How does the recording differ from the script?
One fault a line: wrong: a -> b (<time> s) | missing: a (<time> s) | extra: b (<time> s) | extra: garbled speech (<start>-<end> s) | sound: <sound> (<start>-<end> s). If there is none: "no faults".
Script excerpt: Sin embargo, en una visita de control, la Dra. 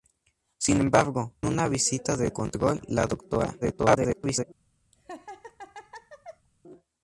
missing: en (1.4 s)
extra: garbled speech (3.6-4.4 s)
sound: laugh (4.9-6.5 s)